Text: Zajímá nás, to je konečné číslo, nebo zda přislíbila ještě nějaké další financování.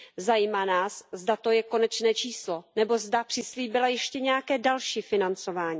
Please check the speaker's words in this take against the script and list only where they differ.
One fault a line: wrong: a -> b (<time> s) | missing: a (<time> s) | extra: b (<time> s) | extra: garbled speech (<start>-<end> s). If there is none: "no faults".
extra: zda (1.1 s)